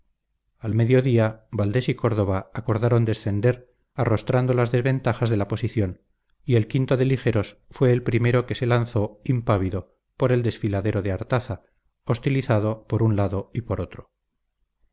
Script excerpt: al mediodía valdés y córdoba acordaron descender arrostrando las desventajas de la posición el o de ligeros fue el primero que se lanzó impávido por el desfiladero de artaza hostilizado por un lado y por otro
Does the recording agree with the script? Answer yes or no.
no